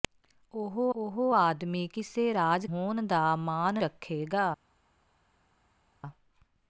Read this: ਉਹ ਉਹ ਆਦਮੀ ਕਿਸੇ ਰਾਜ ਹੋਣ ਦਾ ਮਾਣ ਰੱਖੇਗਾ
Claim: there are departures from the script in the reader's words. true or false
false